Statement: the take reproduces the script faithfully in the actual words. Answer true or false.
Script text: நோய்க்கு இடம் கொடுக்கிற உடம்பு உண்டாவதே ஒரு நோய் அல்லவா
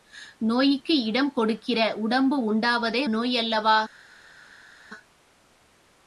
false